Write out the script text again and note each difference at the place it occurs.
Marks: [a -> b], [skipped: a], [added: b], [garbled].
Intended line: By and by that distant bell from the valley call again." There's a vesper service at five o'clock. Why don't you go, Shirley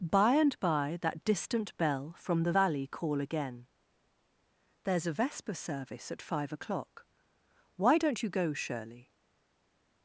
By and by that distant bell from the valley call again." There's a vesper service at five o'clock. Why don't you go, Shirley